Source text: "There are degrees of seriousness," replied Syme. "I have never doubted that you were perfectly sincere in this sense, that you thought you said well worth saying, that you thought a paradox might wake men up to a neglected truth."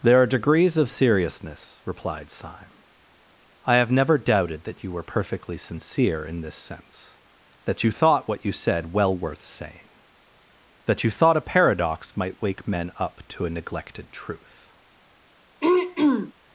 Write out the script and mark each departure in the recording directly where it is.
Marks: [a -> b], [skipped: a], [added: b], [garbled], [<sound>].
"There are degrees of seriousness," replied Syme. "I have never doubted that you were perfectly sincere in this sense, that you thought [added: what] you said well worth saying, that you thought a paradox might wake men up to a neglected truth." [throat clearing]